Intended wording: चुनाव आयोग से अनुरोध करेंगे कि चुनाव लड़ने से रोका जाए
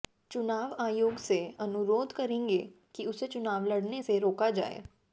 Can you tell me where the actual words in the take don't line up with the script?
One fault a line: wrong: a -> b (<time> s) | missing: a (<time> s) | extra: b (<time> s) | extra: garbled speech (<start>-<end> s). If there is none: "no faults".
extra: उसे (3.1 s)